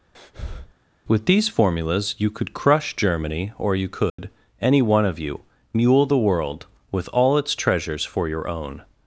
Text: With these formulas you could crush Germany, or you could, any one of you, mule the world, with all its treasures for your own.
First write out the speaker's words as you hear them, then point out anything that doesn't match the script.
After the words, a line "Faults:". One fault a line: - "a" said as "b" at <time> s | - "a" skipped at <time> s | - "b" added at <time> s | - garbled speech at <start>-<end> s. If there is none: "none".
With these formulas you could crush Germany, or you could, any one of you, mule the world, with all its treasures for your own.
Faults:
none